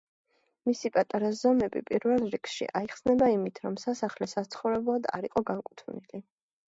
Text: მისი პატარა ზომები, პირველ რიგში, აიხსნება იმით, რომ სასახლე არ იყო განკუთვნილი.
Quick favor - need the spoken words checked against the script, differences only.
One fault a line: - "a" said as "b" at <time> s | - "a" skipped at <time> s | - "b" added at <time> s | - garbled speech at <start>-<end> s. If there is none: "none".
- "საცხოვრებლად" added at 4.3 s